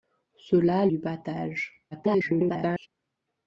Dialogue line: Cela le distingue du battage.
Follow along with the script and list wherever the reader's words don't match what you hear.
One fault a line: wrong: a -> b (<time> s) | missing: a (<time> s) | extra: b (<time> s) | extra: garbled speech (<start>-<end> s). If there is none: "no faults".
missing: le distingue (0.9 s)
extra: garbled speech (1.9-2.9 s)